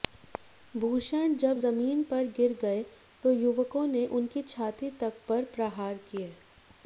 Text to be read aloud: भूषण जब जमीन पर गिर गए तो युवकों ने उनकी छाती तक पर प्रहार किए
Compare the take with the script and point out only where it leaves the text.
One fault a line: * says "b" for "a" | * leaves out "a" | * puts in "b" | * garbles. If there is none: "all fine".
all fine